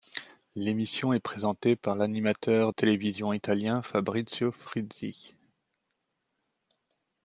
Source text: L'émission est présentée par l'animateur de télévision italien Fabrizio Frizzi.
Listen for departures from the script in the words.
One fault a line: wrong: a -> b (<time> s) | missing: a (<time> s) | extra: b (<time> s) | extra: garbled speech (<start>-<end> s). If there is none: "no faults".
missing: de (2.7 s)